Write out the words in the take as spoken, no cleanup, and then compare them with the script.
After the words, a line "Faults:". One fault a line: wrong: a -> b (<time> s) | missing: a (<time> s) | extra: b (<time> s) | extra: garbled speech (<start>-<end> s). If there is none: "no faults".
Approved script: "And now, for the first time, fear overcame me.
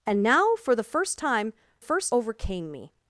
"And now, for the first time, first overcame me.
Faults:
wrong: fear -> first (1.8 s)